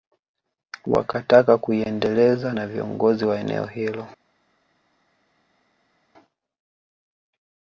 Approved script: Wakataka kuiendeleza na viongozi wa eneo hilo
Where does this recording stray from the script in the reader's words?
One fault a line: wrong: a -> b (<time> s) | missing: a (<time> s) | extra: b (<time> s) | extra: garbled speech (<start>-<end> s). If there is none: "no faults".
no faults